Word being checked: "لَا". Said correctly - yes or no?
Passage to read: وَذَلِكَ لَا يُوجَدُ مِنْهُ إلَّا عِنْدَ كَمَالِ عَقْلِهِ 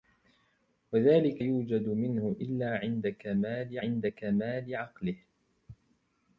no